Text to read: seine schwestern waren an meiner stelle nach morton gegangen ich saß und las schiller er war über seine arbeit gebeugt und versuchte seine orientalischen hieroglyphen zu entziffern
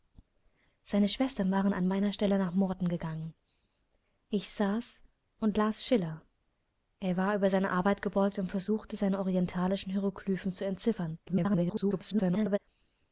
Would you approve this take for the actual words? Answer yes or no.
no